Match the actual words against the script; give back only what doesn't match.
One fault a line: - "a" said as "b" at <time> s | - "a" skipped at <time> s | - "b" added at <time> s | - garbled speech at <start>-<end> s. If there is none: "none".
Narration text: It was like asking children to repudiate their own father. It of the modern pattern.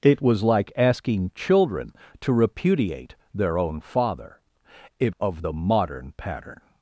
none